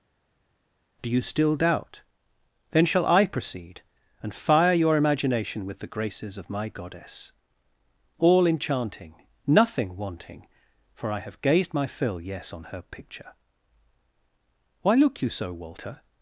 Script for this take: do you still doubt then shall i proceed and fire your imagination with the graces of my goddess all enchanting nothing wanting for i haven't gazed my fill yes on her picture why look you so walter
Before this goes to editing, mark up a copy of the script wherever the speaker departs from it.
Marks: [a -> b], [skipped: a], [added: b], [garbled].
do you still doubt then shall i proceed and fire your imagination with the graces of my goddess all enchanting nothing wanting for i [haven't -> have] gazed my fill yes on her picture why look you so walter